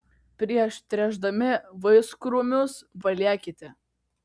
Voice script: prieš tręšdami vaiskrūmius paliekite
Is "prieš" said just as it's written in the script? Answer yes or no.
yes